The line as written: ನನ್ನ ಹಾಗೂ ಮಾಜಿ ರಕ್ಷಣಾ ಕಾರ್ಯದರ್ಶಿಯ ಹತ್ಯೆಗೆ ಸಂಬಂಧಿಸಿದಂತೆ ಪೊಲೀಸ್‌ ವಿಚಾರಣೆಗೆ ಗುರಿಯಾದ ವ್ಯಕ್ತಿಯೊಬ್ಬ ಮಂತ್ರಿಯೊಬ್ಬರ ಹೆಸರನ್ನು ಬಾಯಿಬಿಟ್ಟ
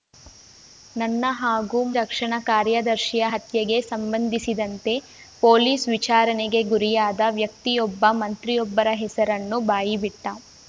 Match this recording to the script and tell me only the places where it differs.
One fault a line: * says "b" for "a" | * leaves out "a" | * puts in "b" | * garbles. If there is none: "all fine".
* leaves out "ಮಾಜಿ"